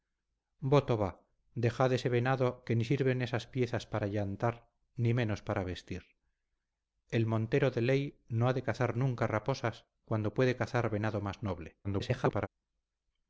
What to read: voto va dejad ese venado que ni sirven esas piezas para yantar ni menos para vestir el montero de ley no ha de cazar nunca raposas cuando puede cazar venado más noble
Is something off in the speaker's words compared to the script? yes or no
yes